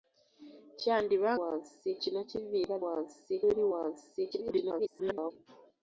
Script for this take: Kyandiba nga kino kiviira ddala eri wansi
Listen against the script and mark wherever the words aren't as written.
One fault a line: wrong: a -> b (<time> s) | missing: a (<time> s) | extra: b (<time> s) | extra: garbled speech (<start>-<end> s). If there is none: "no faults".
wrong: nga -> wansi (1.4 s)
wrong: ddala -> wansi (2.8 s)
extra: garbled speech (4.3-5.3 s)